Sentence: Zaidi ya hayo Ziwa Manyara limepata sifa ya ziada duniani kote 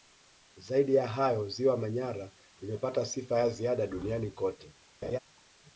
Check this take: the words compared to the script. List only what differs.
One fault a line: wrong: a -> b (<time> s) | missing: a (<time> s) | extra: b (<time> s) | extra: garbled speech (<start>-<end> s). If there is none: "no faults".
no faults